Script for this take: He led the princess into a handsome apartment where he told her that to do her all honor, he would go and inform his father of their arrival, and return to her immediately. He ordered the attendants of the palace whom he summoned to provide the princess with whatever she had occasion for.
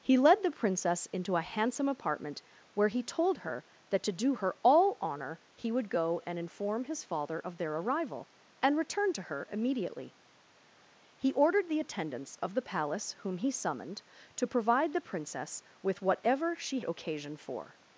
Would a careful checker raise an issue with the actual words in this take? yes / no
yes